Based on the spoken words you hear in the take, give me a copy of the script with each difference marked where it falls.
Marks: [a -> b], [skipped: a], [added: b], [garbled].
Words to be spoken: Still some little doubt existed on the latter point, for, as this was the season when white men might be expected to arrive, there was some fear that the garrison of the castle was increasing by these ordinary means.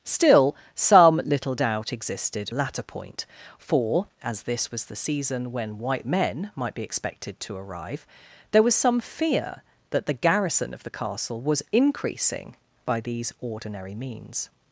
Still some little doubt existed [skipped: on the] latter point, for, as this was the season when white men might be expected to arrive, there was some fear that the garrison of the castle was increasing by these ordinary means.